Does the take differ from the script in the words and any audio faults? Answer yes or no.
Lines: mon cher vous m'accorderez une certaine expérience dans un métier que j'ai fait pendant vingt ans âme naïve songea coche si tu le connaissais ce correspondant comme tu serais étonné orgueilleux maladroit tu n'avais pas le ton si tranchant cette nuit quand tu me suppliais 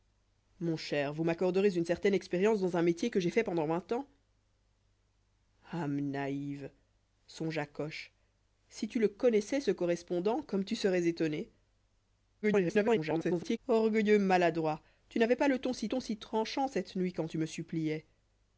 yes